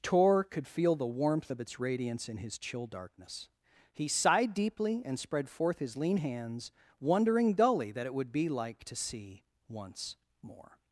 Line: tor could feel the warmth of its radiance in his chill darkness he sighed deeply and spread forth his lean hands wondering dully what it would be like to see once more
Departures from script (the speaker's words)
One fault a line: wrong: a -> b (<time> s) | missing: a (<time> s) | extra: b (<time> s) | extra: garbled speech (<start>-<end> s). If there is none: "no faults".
wrong: what -> that (7.9 s)